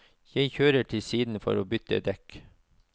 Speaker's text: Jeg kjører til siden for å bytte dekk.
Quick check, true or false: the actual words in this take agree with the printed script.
true